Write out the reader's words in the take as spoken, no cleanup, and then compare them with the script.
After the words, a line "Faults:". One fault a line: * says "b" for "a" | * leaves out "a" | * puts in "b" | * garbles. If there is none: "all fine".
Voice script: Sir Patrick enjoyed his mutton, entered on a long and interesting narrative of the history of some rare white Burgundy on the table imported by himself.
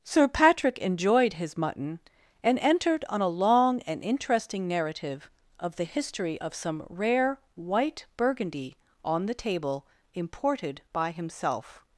Sir Patrick enjoyed his mutton, and entered on a long and interesting narrative of the history of some rare white Burgundy on the table imported by himself.
Faults:
* puts in "and"